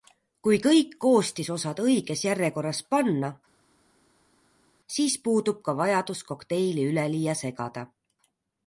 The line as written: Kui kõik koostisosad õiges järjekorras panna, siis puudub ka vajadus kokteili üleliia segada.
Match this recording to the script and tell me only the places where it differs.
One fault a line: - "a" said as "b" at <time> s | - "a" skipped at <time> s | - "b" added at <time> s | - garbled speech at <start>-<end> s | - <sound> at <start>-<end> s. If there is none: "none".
none